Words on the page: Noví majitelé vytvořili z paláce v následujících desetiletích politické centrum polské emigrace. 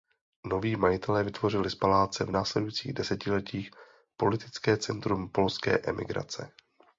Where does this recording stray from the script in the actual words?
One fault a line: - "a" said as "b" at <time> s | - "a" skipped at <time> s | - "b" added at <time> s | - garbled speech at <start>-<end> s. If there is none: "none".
none